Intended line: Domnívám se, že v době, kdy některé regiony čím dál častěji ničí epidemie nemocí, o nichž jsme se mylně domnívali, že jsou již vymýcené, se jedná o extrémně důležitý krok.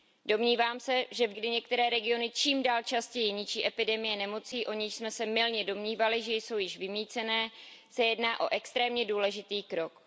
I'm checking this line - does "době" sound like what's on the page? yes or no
no